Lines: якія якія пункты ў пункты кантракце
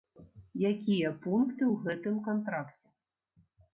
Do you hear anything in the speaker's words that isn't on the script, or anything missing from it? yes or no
yes